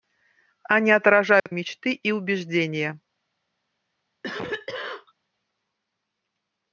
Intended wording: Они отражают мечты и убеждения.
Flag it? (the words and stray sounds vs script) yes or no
yes